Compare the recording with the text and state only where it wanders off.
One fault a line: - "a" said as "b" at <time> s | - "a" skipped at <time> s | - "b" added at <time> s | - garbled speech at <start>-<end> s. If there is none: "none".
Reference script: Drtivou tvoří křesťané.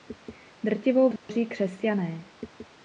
none